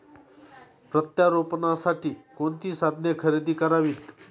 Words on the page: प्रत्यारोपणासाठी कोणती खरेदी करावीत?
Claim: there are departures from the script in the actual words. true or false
true